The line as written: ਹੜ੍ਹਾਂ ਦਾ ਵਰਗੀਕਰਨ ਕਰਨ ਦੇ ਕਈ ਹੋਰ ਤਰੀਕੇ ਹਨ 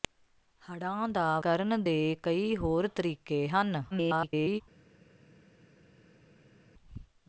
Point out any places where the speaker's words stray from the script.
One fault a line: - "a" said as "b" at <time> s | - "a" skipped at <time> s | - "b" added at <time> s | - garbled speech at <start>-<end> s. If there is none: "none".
- "ਵਰਗੀਕਰਨ" skipped at 1.4 s
- garbled speech at 3.9-4.6 s